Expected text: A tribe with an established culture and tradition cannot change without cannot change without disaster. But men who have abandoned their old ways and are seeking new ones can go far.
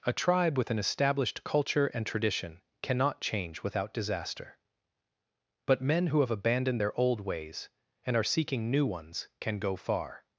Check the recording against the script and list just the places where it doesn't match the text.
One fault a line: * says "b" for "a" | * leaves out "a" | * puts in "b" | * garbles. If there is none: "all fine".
* leaves out "cannot change without"